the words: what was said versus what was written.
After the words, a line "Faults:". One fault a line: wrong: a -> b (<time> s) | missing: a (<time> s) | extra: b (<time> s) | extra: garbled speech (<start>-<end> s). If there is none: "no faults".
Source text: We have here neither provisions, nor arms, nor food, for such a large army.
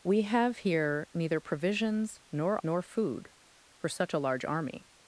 We have here neither provisions, nor nor food, for such a large army.
Faults:
missing: arms (2.6 s)